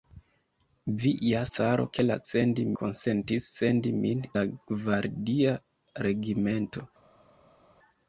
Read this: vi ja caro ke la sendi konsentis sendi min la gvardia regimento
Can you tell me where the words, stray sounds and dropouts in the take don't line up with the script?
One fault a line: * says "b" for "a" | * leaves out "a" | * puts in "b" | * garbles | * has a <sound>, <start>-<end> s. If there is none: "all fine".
all fine